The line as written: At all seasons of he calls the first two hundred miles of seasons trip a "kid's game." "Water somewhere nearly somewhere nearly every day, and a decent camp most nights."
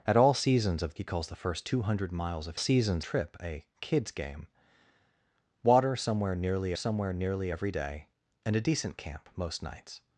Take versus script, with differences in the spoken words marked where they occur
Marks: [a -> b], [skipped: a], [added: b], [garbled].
At all seasons of he calls the first two hundred miles of seasons trip a "kid's game." "Water somewhere nearly somewhere nearly every day, and a decent camp most nights."